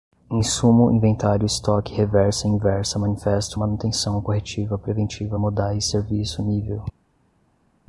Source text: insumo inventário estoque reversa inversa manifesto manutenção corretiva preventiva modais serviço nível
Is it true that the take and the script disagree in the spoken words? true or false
false